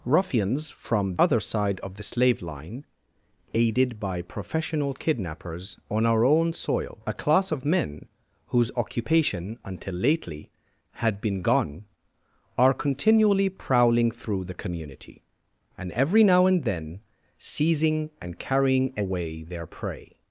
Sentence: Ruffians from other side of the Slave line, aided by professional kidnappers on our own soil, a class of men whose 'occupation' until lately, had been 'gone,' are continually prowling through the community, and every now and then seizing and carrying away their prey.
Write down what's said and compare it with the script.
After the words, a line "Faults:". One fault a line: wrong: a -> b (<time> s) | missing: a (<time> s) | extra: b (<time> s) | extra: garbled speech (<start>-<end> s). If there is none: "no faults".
Ruffians from other side of the Slave line, aided by professional kidnappers on our own soil, a class of men whose 'occupation' until lately, had been 'gone,' are continually prowling through the community, and every now and then seizing and carrying away their prey.
Faults:
no faults